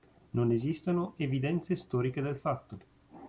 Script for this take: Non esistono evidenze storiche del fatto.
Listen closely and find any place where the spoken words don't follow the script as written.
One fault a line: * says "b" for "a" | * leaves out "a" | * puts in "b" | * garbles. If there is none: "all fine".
all fine